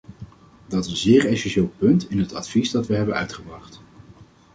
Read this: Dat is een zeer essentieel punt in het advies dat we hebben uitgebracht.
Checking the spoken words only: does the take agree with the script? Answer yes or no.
no